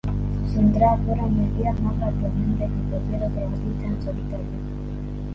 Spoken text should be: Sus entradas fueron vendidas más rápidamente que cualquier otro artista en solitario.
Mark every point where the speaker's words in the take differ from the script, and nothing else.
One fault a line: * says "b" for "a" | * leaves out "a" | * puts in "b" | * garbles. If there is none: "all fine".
all fine